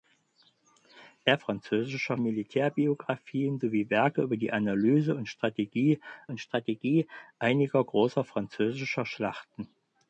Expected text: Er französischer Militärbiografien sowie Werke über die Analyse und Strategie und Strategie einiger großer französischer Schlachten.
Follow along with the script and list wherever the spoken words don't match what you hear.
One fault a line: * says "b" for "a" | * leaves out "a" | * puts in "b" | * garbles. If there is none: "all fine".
all fine